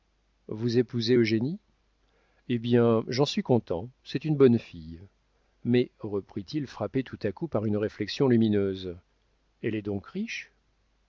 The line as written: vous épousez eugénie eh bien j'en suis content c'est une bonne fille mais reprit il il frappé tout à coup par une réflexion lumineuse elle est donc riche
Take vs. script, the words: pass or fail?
fail